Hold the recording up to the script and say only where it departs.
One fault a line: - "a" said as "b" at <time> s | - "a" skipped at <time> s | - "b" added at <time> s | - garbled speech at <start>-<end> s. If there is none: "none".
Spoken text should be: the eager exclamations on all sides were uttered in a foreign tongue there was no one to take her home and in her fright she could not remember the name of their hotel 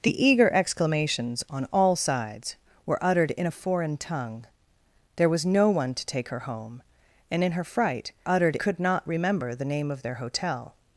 - "she" said as "uttered" at 8.3 s